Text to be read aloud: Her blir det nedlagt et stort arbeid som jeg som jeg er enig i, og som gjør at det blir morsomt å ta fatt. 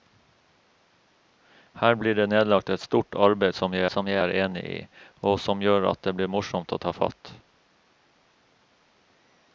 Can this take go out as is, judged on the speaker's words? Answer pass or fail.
pass